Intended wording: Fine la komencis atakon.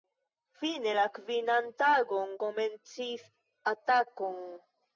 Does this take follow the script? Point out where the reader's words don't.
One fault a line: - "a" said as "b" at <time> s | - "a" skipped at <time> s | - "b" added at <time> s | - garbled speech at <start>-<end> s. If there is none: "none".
- "kvinan tagon" added at 1.2 s